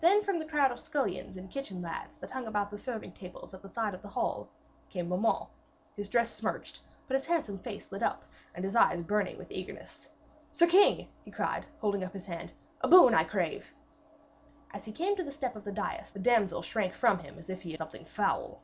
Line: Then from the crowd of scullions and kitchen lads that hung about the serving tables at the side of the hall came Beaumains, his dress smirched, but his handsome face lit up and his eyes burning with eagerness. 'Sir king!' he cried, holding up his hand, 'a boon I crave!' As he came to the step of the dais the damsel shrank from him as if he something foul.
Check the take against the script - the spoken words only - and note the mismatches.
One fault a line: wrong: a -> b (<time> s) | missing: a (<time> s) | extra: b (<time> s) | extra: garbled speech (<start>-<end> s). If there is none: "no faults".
no faults